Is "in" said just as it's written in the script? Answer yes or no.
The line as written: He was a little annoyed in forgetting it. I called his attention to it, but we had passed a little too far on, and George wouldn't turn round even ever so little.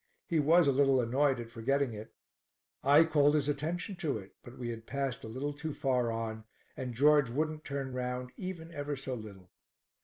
no